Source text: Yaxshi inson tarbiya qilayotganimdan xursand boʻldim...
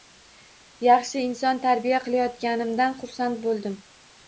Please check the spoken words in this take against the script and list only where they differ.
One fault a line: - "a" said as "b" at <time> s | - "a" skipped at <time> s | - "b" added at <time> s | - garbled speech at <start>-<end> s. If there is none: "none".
none